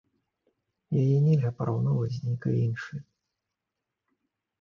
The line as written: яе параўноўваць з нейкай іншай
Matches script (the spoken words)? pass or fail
fail